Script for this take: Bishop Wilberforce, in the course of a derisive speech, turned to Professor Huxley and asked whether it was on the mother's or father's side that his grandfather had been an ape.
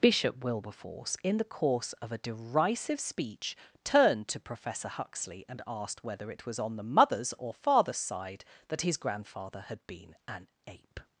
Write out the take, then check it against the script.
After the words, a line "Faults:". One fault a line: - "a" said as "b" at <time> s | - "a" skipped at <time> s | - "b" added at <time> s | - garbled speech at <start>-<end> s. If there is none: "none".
Bishop Wilberforce, in the course of a derisive speech, turned to Professor Huxley and asked whether it was on the mother's or father's side that his grandfather had been an ape.
Faults:
none